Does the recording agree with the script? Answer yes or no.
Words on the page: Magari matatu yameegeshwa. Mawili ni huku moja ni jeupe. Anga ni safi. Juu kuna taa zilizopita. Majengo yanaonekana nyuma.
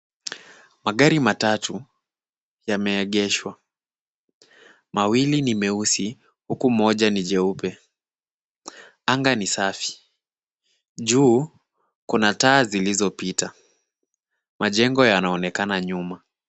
no